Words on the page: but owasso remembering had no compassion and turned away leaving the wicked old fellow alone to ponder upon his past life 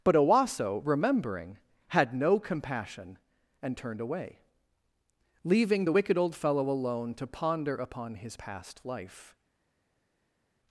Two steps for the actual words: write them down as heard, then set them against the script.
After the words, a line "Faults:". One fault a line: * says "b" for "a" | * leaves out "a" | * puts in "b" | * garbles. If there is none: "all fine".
but owasso remembering had no compassion and turned away leaving the wicked old fellow alone to ponder upon his past life
Faults:
all fine